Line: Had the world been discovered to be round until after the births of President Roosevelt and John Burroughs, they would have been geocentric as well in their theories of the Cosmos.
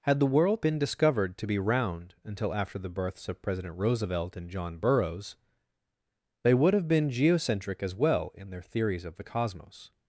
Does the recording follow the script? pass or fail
pass